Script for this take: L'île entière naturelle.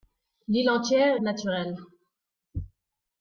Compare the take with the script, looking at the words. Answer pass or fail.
pass